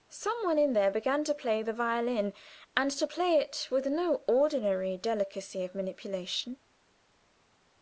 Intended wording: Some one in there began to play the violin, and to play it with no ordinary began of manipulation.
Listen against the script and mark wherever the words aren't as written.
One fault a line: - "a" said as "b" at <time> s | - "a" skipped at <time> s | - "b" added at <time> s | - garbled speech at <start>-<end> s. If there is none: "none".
- "began" said as "delicacy" at 5.0 s